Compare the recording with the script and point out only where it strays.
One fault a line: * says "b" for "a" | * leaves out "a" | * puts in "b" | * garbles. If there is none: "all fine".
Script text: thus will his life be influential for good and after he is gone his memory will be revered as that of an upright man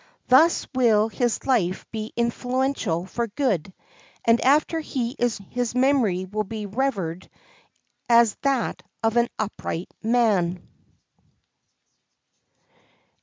* leaves out "gone"